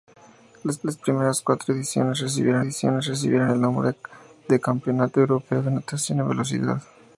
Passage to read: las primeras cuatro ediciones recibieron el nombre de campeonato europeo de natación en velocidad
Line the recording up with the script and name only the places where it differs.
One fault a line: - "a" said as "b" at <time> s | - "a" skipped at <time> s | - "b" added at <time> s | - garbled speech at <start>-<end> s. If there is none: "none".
- "las" added at 0.8 s
- "ediciones recibieron" added at 2.6 s